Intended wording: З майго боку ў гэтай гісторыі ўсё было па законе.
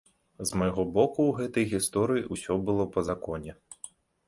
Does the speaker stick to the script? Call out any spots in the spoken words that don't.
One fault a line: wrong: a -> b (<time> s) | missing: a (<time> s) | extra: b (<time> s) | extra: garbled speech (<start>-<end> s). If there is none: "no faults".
no faults